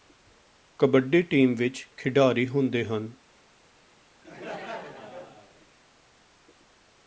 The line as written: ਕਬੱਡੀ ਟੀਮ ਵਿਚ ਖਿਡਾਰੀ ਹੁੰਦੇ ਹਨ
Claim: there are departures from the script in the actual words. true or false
false